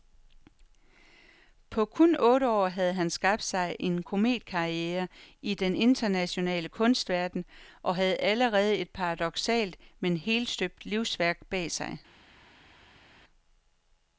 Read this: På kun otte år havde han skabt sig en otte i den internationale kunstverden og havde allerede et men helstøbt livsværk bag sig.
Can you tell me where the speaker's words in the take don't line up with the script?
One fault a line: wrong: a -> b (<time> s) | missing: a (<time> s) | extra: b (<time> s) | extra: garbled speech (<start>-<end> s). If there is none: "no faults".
wrong: otte -> kometkarriere (4.0 s)
extra: paradoksalt (8.9 s)